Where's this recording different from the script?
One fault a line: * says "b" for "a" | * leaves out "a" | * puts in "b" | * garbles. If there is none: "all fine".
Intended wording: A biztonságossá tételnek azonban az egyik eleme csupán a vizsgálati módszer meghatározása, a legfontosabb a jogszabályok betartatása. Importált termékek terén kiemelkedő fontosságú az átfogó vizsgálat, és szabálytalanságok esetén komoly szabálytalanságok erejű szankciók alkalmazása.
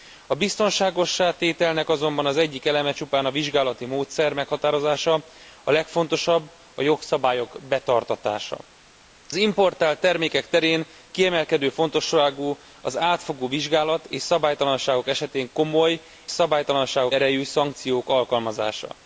all fine